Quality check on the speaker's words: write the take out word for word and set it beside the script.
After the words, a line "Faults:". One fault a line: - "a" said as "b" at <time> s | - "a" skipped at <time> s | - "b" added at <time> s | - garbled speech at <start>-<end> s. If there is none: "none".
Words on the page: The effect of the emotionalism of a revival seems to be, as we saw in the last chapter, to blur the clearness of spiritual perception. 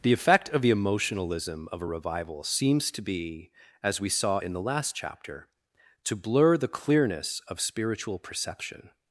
The effect of the emotionalism of a revival seems to be, as we saw in the last chapter, to blur the clearness of spiritual perception.
Faults:
none